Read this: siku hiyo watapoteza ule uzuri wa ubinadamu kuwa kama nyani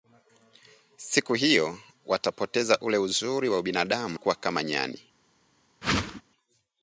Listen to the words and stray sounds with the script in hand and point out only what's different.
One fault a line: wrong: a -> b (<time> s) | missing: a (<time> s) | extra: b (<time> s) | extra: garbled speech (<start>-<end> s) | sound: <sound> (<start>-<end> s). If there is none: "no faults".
sound: whoosh (5.8-6.2 s)